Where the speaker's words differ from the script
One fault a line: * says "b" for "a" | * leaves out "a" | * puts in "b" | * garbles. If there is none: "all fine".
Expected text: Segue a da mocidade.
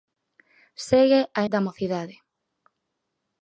all fine